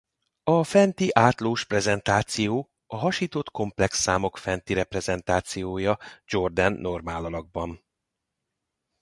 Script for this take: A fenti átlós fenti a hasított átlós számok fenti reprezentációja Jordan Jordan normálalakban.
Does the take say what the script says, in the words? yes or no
no